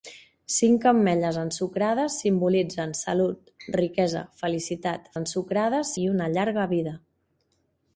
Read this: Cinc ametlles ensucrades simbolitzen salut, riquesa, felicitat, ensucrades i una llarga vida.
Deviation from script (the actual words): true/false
false